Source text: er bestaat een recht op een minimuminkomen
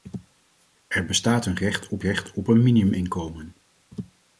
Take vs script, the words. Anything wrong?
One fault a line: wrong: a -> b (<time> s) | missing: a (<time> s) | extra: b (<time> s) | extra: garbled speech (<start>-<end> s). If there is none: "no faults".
extra: recht op (2.0 s)